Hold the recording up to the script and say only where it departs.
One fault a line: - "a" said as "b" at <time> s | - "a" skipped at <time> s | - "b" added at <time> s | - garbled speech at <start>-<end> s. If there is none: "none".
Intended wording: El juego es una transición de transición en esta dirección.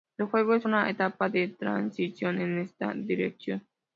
- "transición" said as "etapa" at 0.9 s